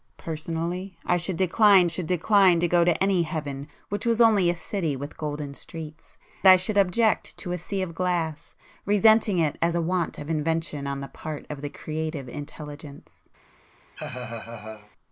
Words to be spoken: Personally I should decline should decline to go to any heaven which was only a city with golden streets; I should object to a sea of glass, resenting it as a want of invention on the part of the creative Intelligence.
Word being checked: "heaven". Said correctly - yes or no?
yes